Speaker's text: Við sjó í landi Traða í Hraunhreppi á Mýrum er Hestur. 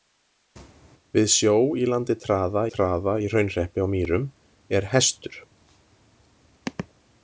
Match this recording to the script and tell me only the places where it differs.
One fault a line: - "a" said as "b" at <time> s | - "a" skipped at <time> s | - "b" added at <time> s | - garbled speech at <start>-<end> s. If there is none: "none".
- "Traða" added at 2.7 s